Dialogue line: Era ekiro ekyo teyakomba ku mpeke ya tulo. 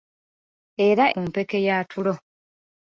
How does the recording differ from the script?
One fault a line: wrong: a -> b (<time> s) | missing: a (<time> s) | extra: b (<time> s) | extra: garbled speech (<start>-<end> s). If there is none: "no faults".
missing: ekiro ekyo teyakomba (1.1 s)